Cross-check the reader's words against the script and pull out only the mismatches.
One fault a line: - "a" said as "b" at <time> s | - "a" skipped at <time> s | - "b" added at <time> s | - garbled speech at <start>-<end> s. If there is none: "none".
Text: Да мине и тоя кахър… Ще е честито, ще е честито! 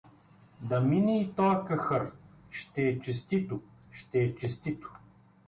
none